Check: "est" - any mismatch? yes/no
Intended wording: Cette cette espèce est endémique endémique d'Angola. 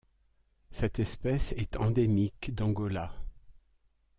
no